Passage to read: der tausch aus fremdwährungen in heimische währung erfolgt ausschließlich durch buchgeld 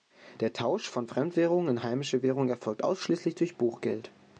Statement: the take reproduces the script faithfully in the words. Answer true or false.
false